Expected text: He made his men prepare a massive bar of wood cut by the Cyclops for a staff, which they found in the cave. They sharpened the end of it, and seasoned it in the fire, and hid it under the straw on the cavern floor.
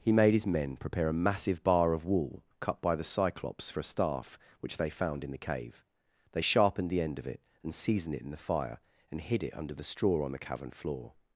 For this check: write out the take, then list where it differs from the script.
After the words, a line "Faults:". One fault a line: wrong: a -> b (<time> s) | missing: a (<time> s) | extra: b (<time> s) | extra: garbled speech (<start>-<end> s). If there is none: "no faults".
He made his men prepare a massive bar of wool cut by the Cyclops for a staff, which they found in the cave. They sharpened the end of it, and seasoned it in the fire, and hid it under the straw on the cavern floor.
Faults:
wrong: wood -> wool (2.0 s)